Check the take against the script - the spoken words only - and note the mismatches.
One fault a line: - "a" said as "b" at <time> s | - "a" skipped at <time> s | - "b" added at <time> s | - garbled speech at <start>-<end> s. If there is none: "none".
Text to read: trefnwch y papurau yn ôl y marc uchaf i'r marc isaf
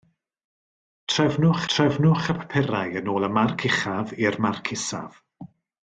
- "trefnwch" added at 1.7 s